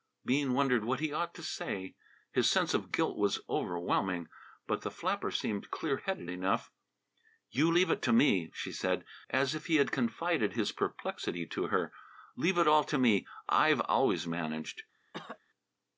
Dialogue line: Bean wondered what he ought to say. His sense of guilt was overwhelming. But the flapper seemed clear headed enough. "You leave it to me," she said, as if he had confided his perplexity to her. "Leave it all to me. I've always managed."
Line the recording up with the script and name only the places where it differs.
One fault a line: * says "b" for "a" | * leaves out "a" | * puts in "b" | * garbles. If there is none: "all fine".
all fine